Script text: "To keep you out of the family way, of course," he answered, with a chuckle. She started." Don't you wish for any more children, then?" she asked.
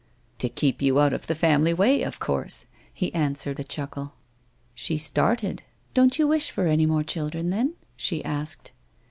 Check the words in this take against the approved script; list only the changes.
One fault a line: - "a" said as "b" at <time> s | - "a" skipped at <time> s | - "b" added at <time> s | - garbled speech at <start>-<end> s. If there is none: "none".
- "with" skipped at 3.6 s